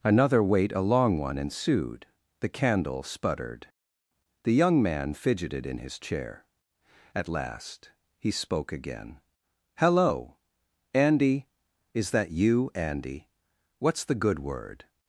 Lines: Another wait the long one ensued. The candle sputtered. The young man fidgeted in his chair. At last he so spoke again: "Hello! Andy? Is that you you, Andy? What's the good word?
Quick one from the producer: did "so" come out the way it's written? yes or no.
no